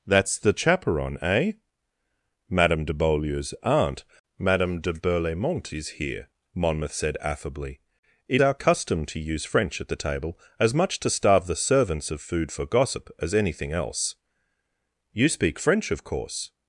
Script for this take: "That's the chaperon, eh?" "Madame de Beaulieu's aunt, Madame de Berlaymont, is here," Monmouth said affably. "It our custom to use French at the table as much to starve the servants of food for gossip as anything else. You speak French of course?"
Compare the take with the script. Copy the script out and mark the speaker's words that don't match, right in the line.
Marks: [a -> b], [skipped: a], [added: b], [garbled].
"That's the chaperon, eh?" "Madame de Beaulieu's aunt, Madame de Berlaymont, is here," Monmouth said affably. "It our custom to use French at the table as much to starve the servants of food for gossip as anything else. You speak French of course?"